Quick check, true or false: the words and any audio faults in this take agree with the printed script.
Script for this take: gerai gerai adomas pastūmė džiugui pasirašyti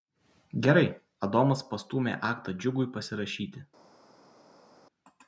false